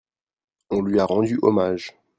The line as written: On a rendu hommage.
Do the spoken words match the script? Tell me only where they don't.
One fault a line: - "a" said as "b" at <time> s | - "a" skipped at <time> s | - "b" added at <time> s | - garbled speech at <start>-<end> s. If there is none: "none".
- "lui" added at 0.8 s